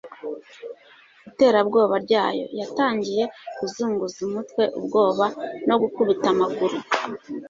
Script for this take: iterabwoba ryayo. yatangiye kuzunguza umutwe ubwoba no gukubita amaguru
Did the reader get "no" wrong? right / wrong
right